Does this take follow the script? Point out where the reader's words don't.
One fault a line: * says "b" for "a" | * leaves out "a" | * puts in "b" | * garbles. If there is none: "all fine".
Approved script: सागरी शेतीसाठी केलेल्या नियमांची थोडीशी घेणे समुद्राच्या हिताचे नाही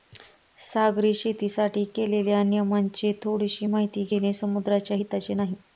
* puts in "माहिती"